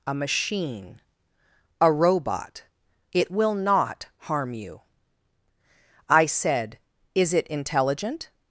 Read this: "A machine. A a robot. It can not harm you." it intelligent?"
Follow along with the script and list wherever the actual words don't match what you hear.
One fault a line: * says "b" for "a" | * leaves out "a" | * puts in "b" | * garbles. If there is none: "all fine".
* leaves out "a"
* says "will" for "can"
* puts in "I said Is"